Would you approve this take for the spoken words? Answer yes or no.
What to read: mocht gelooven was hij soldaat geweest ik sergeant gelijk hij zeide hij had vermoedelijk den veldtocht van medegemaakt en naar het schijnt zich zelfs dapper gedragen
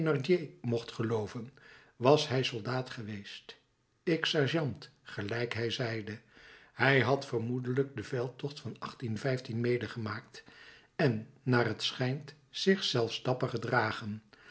yes